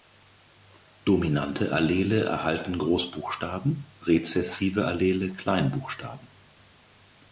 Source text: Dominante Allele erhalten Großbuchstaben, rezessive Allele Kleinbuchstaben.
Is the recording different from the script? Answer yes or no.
no